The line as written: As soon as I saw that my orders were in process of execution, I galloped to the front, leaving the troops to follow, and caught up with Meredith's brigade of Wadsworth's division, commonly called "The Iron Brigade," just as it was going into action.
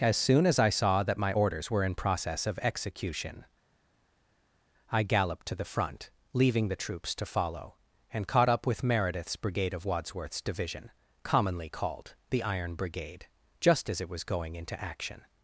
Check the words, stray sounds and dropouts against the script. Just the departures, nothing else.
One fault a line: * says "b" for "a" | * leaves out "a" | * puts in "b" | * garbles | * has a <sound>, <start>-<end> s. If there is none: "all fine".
all fine